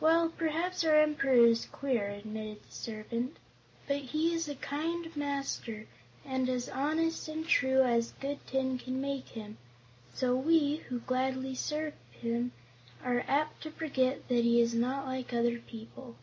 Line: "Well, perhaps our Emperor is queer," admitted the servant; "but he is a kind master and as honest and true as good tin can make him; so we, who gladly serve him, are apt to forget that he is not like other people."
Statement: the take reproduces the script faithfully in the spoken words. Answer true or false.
true